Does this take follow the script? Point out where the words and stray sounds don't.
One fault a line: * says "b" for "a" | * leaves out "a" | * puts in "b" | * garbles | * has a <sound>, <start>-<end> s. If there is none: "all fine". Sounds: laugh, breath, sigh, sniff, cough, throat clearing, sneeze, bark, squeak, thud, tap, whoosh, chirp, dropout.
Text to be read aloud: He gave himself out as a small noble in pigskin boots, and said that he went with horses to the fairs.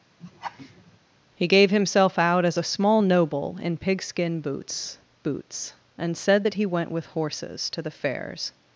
* has a laugh, 0.2-1.0 s
* puts in "boots"